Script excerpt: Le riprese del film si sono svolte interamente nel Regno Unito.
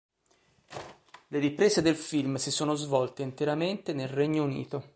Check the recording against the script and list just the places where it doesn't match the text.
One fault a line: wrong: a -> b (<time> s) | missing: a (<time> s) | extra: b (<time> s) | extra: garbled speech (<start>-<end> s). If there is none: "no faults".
no faults